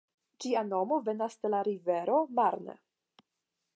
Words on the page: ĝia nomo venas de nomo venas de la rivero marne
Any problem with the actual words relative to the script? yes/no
yes